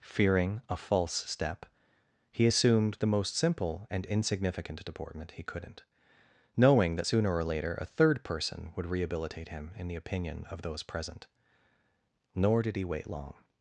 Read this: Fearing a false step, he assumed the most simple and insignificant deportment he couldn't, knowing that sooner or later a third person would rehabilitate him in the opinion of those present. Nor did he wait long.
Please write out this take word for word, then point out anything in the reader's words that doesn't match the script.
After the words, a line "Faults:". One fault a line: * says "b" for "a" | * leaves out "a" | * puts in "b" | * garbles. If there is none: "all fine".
Fearing a false step, he assumed the most simple and insignificant deportment he couldn't, knowing that sooner or later a third person would rehabilitate him in the opinion of those present. Nor did he wait long.
Faults:
all fine